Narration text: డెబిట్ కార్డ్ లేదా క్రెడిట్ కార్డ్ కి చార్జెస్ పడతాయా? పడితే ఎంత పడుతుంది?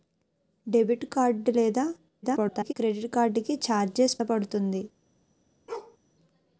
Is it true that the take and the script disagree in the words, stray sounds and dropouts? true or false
true